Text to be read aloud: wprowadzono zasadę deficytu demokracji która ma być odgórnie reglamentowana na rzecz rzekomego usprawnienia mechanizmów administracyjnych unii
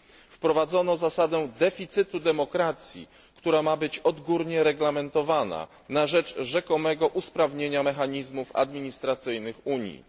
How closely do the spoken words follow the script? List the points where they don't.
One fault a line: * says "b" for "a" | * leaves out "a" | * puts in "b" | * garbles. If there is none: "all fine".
all fine